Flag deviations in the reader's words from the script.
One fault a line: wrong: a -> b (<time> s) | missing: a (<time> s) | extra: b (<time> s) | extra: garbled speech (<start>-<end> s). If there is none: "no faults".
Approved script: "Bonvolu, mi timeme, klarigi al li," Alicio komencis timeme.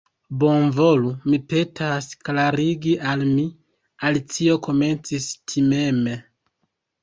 wrong: timeme -> petas (1.5 s)
wrong: li -> mi (3.3 s)